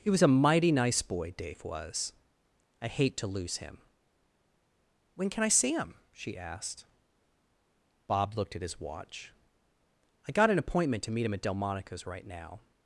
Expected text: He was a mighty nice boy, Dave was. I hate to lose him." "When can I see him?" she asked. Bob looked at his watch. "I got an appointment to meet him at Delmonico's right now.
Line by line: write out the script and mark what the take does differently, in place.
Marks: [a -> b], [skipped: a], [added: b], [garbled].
He was a mighty nice boy, Dave was. I hate to lose him." "When can I see him?" she asked. Bob looked at his watch. "I got an appointment to meet him at Delmonico's right now.